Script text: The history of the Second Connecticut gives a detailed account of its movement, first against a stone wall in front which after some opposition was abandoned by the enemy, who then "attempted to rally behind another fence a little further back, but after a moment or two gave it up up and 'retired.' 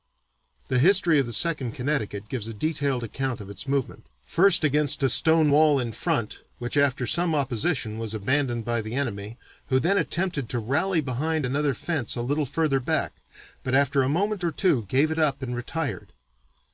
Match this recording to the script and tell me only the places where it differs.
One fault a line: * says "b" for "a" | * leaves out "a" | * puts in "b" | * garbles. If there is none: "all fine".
* leaves out "up"